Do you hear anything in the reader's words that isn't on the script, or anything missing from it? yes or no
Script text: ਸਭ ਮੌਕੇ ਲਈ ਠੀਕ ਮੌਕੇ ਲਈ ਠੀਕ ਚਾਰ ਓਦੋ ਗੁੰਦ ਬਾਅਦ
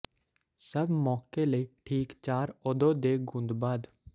yes